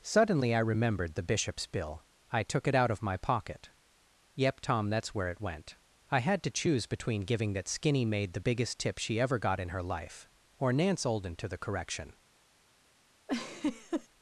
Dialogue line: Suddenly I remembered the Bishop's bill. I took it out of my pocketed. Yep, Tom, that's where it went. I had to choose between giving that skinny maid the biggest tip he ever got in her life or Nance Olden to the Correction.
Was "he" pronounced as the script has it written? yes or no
no